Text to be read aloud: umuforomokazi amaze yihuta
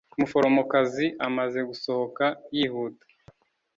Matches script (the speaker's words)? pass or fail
fail